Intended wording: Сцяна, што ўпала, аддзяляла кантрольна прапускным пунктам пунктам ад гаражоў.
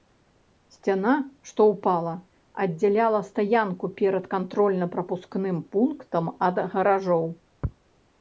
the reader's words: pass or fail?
fail